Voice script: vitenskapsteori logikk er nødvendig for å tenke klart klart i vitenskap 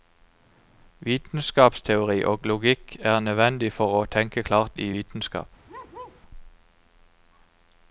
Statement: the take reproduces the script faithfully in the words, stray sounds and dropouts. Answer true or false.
false